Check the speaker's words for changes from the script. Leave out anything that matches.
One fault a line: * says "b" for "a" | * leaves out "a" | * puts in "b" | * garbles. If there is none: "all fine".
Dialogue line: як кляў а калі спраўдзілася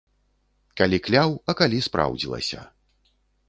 * says "калі" for "як"